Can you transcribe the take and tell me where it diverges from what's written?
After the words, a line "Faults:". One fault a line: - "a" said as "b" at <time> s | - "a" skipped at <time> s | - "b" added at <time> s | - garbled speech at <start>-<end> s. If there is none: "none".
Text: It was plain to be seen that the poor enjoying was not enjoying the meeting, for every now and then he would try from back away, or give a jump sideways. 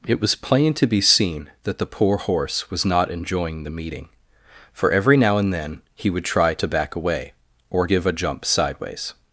It was plain to be seen that the poor horse was not enjoying the meeting, for every now and then he would try to back away, or give a jump sideways.
Faults:
- "enjoying" said as "horse" at 2.2 s
- "from" said as "to" at 6.5 s